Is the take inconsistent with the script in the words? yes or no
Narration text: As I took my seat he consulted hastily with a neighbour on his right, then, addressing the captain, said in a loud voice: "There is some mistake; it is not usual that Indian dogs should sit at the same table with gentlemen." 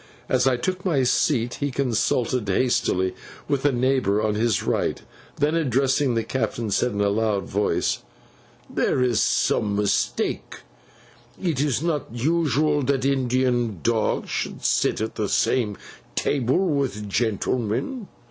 no